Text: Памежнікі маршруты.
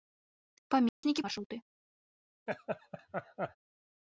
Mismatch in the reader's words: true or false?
false